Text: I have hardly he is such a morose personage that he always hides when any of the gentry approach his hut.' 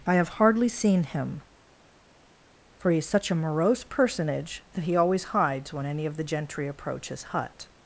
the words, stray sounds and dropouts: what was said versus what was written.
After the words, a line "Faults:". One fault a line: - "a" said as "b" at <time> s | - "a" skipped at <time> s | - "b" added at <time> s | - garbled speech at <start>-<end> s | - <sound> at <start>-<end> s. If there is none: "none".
I have hardly seen him, for he is such a morose personage that he always hides when any of the gentry approach his hut.'
Faults:
- "seen him for" added at 0.7 s